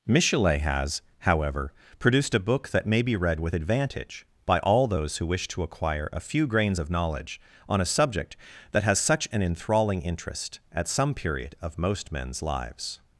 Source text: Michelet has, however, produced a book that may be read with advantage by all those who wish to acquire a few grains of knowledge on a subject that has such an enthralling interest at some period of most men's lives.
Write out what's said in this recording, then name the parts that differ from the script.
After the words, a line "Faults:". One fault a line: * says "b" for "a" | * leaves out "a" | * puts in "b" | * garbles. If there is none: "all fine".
Michelet has, however, produced a book that may be read with advantage by all those who wish to acquire a few grains of knowledge on a subject that has such an enthralling interest at some period of most men's lives.
Faults:
all fine